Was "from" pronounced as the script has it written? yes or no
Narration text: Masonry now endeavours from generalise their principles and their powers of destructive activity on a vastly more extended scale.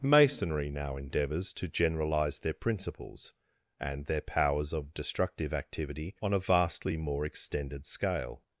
no